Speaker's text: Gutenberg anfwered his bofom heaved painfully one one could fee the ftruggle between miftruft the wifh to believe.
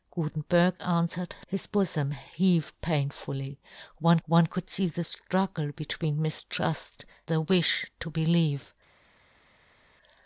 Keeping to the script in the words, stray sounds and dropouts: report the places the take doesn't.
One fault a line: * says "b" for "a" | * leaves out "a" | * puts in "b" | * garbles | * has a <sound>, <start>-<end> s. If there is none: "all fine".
all fine